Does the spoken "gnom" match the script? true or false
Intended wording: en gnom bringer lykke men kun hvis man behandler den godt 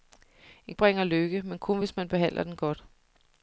false